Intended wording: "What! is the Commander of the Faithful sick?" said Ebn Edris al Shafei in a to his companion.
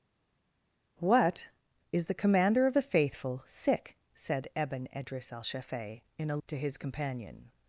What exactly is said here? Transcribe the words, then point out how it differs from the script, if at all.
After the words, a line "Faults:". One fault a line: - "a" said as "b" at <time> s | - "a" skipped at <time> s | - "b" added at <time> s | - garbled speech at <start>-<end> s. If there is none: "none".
"What! is the Commander of the Faithful sick?" said Ebn Edris al Shafei in a to his companion.
Faults:
none